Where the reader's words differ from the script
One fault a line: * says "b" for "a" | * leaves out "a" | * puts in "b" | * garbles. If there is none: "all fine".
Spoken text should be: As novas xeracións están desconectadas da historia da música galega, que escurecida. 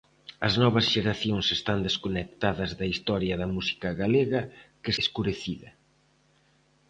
all fine